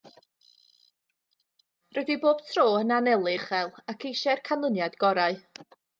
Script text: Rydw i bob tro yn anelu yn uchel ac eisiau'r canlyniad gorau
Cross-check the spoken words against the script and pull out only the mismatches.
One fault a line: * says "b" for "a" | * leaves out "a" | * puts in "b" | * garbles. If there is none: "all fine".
* leaves out "yn"